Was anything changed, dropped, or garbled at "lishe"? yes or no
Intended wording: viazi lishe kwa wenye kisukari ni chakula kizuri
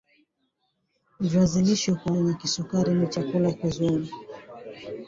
no